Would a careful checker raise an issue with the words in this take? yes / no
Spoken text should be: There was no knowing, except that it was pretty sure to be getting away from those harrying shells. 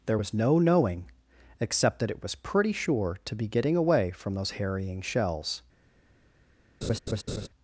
no